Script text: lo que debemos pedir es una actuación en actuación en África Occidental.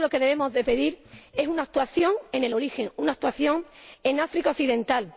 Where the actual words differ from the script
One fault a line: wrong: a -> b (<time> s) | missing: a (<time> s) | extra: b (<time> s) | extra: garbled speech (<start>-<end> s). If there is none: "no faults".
extra: el origen una (2.4 s)